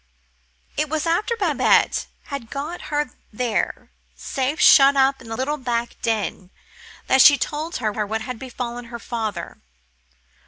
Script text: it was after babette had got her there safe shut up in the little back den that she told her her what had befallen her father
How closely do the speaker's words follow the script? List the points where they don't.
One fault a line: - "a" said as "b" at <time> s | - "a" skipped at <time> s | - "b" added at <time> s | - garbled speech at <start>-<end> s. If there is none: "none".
none